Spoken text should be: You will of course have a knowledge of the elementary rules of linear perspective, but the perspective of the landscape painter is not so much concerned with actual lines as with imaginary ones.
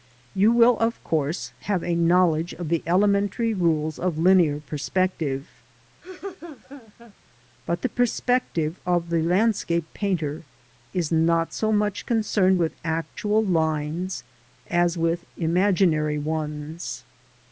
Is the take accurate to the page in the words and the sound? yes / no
no